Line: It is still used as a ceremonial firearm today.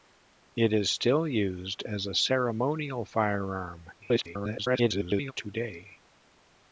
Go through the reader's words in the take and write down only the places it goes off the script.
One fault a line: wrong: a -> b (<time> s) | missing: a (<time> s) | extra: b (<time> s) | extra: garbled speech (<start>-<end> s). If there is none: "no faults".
extra: garbled speech (4.0-5.3 s)